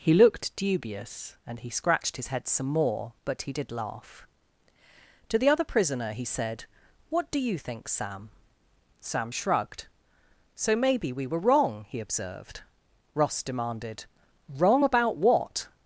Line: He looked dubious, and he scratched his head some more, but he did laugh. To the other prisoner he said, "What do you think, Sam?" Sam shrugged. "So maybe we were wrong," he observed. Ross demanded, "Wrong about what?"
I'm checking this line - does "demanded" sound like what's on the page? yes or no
yes